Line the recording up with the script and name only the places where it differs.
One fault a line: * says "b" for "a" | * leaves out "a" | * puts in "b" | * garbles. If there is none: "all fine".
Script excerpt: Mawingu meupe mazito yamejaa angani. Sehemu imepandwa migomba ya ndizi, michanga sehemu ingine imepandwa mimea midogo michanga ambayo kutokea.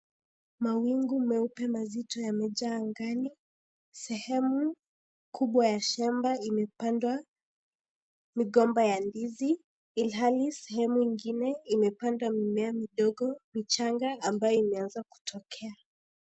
* puts in "kubwa ya shamba"
* says "ilhali" for "michanga"
* puts in "imeanza"